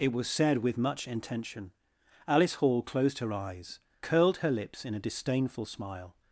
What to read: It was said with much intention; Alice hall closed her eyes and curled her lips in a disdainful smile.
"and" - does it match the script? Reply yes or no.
no